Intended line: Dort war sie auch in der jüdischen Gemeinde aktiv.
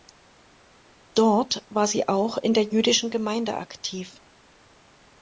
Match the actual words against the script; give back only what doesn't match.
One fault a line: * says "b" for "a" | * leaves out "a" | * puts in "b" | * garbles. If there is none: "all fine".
all fine